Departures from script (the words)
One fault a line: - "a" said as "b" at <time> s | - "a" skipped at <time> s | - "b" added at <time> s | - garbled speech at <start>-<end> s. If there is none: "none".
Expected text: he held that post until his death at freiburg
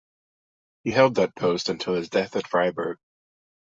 none